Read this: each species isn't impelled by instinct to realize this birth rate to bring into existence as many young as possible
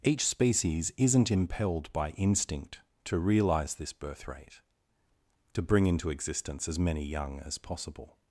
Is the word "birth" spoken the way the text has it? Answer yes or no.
yes